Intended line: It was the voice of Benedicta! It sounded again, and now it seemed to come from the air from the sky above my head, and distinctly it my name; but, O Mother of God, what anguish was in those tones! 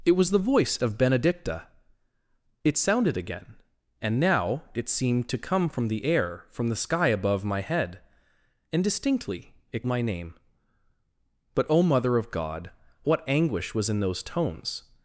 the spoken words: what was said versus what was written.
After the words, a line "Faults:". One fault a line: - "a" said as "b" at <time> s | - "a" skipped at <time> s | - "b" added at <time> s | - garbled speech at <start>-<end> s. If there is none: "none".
It was the voice of Benedicta! It sounded again, and now it seemed to come from the air from the sky above my head, and distinctly it my name; but, O Mother of God, what anguish was in those tones!
Faults:
none